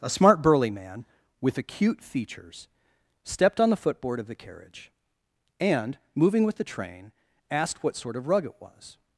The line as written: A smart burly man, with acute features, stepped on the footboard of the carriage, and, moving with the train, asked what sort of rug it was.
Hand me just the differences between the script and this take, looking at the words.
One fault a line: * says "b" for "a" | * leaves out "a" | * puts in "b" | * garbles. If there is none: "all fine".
all fine